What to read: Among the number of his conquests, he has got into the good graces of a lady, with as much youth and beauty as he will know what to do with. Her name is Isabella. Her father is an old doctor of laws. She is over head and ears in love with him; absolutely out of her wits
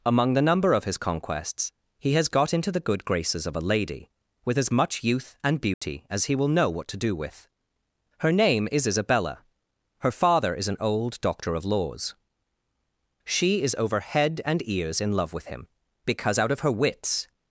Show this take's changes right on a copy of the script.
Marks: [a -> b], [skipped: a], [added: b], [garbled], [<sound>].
Among the number of his conquests, he has got into the good graces of a lady, with as much youth and beauty [dropout] as he will know what to do with. Her name is Isabella. Her father is an old doctor of laws. She is over head and ears in love with him; [absolutely -> because] out of her wits